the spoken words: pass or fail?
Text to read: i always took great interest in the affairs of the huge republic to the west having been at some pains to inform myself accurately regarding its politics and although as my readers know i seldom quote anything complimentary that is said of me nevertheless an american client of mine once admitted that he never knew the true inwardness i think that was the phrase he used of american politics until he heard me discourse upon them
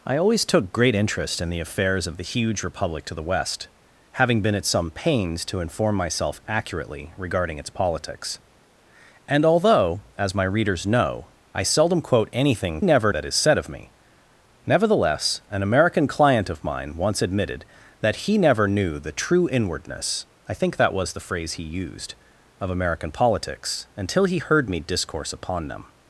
fail